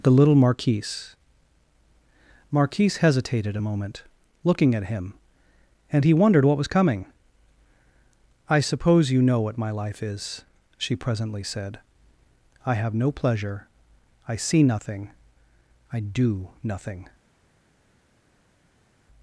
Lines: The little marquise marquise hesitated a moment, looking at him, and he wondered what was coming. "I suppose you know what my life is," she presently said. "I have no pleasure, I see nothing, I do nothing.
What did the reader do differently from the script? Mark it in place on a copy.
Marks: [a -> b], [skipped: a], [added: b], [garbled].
The little marquise marquise hesitated a moment, looking at him, and he wondered what was coming. "I suppose you know what my life is," she presently said. "I have no pleasure, I see nothing, I do nothing.